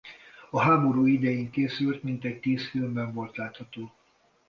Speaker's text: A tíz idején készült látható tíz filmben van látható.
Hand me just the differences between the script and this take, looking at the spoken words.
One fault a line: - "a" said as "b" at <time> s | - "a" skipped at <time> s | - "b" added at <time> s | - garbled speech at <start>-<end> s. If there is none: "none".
- "tíz" said as "háború" at 0.6 s
- "látható" said as "mintegy" at 2.0 s
- "van" said as "volt" at 3.1 s